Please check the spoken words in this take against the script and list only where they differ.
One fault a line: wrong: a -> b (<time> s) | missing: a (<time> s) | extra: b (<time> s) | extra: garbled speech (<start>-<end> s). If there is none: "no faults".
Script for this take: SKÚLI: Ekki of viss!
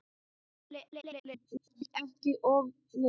extra: garbled speech (0.9-1.9 s)